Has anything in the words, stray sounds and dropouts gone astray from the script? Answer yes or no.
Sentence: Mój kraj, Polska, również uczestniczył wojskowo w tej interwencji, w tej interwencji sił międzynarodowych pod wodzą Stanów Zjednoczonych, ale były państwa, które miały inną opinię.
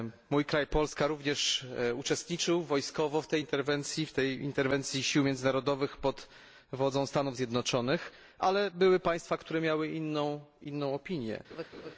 yes